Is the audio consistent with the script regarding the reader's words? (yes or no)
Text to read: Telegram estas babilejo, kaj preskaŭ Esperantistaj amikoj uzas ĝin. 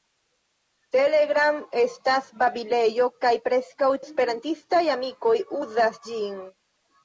yes